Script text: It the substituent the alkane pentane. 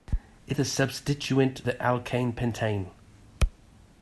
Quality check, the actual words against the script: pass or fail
pass